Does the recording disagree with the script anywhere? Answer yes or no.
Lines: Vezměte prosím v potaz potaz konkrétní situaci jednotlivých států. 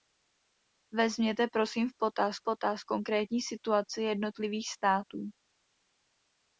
no